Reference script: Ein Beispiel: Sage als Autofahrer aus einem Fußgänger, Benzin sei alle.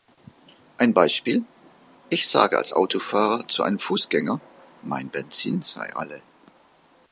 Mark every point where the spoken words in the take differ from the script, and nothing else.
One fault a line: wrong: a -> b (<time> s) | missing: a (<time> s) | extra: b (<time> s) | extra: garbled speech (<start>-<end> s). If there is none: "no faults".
extra: Ich (2.1 s)
wrong: aus -> zu (3.5 s)
extra: mein (4.8 s)